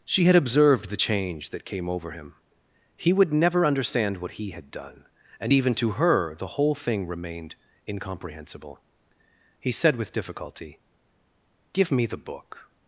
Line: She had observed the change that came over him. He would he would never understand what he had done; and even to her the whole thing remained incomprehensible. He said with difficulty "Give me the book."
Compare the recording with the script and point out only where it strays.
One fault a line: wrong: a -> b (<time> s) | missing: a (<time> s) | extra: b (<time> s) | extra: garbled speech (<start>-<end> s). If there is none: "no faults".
missing: he would (3.3 s)